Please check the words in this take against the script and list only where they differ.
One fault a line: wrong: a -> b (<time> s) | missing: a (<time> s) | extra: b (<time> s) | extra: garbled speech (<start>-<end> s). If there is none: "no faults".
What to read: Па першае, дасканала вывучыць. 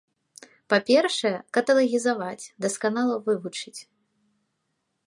extra: каталагізаваць (1.6 s)